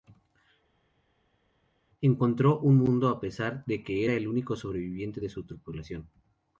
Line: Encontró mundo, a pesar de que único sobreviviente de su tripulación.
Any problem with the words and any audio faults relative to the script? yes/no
yes